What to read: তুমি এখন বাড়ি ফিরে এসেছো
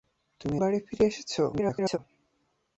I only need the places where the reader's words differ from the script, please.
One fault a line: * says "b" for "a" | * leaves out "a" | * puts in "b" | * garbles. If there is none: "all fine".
* leaves out "এখন"
* garbles